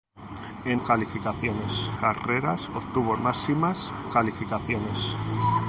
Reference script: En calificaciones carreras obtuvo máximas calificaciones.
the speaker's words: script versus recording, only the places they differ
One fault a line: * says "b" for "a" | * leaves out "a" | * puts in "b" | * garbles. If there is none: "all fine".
all fine